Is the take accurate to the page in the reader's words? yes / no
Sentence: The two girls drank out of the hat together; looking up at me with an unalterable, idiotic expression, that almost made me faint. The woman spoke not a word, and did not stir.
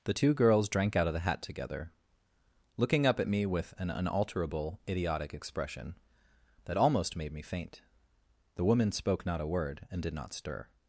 yes